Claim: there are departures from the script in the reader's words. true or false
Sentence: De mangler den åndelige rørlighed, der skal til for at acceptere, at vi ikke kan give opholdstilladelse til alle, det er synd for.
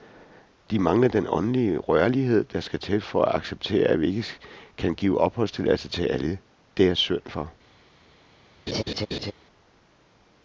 false